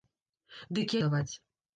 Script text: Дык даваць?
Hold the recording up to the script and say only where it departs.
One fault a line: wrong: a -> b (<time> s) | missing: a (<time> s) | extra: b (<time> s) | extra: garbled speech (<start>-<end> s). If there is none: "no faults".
no faults